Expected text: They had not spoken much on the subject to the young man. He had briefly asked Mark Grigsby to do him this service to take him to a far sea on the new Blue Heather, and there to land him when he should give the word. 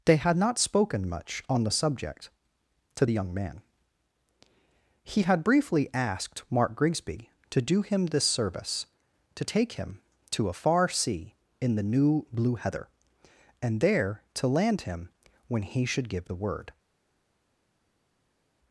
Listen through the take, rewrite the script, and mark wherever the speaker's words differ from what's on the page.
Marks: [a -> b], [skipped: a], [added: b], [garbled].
They had not spoken much on the subject to the young man. He had briefly asked Mark Grigsby to do him this service to take him to a far sea [on -> in] the new Blue Heather, and there to land him when he should give the word.